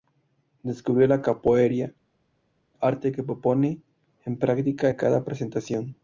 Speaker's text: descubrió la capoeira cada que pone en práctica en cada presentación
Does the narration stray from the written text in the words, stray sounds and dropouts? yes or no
yes